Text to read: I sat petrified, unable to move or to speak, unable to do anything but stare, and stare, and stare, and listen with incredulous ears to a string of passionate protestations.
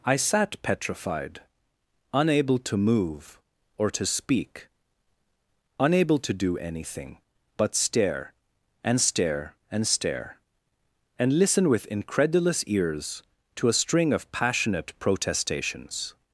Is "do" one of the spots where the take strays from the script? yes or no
no